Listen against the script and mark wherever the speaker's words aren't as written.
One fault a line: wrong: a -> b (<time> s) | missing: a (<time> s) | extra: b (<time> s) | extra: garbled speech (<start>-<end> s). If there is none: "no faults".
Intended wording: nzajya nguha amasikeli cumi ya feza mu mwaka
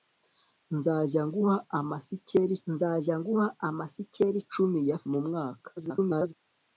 extra: nzajya nguha amasikeli (2.7 s)
missing: feza (5.0 s)
extra: garbled speech (5.8-6.3 s)